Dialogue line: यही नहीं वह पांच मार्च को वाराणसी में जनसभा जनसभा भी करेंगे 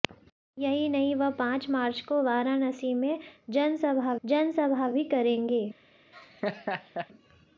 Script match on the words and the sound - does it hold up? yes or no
no